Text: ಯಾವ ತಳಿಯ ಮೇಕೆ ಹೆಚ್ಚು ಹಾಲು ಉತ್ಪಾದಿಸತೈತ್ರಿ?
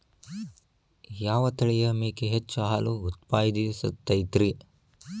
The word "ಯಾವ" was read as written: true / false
true